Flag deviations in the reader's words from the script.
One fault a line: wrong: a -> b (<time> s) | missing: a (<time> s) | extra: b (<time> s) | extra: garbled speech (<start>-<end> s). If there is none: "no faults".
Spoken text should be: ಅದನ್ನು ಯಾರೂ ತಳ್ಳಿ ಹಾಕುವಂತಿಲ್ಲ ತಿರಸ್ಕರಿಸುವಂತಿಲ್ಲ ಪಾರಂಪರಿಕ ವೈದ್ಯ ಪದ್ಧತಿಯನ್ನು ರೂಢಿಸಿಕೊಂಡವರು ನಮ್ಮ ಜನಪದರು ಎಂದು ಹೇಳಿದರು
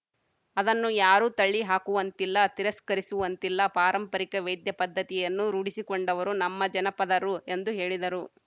no faults